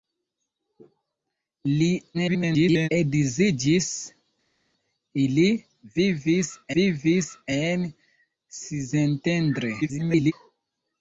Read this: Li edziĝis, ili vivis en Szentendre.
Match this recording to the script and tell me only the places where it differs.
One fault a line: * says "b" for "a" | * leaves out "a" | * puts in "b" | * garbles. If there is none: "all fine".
* garbles
* puts in "vivis"
* garbles